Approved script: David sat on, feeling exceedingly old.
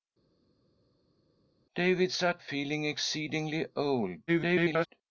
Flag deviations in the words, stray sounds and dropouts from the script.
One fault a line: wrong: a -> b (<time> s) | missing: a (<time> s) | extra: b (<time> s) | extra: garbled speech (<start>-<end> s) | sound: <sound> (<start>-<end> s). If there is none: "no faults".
missing: on (2.4 s)
extra: garbled speech (4.3-4.9 s)